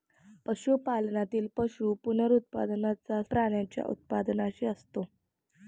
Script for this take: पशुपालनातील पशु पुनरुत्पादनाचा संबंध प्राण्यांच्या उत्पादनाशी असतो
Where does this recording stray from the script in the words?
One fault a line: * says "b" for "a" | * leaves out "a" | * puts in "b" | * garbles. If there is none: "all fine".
* leaves out "संबंध"